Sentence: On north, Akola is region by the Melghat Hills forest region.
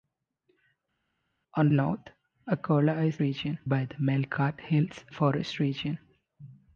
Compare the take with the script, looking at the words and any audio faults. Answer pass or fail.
pass